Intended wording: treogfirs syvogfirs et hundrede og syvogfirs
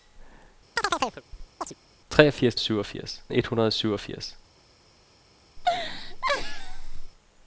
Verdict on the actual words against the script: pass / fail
pass